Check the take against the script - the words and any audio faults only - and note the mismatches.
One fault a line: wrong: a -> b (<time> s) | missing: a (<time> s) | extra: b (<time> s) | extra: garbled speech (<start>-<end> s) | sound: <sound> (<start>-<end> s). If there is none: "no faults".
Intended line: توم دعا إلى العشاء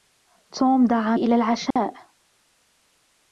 sound: dropout (1.7-1.8 s)